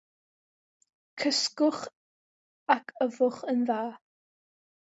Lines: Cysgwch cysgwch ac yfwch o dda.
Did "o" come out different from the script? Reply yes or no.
yes